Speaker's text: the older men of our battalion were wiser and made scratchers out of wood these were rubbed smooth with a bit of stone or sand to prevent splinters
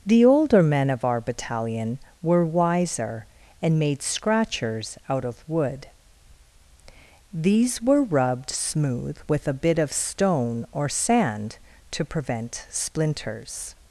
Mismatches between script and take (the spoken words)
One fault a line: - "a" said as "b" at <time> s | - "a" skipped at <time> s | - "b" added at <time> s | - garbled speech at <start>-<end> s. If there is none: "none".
none